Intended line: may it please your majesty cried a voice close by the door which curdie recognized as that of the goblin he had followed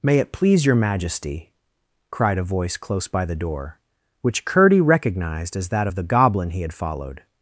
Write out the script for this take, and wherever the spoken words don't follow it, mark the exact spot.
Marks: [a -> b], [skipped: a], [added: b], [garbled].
may it please your majesty cried a voice close by the door which curdie recognized as that of the goblin he had followed